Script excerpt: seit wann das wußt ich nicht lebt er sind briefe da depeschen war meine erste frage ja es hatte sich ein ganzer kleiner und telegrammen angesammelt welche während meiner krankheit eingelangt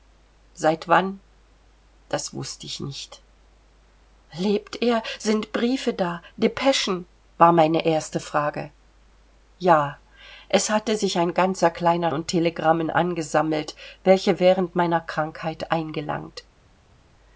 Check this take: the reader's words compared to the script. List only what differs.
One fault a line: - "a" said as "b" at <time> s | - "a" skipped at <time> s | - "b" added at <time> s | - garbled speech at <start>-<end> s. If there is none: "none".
none